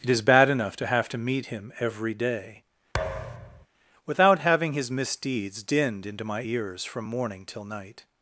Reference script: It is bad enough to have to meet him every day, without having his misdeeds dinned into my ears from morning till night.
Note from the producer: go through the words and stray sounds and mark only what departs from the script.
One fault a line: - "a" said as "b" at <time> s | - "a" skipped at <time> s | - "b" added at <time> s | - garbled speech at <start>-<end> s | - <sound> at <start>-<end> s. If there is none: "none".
- thud at 2.9-3.7 s